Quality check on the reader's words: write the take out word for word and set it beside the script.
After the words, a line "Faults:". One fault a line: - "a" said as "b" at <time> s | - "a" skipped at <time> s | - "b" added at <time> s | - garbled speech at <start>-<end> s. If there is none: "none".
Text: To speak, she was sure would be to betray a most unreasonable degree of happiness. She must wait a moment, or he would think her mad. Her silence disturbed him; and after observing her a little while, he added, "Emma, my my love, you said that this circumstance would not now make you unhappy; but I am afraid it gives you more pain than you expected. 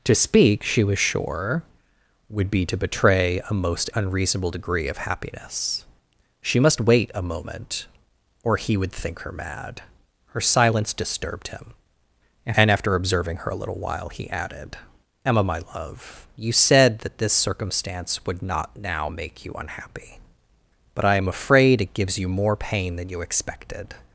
To speak, she was sure would be to betray a most unreasonable degree of happiness. She must wait a moment, or he would think her mad. Her silence disturbed him; and after observing her a little while, he added, "Emma, my love, you said that this circumstance would not now make you unhappy; but I am afraid it gives you more pain than you expected.
Faults:
- "my" skipped at 15.6 s